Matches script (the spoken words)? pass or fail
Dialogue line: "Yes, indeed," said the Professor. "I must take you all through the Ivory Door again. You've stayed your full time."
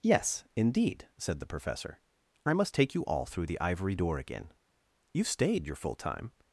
pass